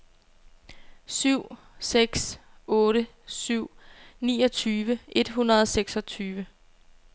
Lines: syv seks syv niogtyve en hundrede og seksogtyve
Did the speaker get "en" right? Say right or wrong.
wrong